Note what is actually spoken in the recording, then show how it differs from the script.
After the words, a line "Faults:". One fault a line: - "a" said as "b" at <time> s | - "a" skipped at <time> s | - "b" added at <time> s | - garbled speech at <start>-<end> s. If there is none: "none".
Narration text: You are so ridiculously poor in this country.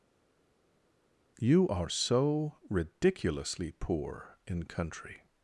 You are so ridiculously poor in country.
Faults:
- "this" skipped at 4.6 s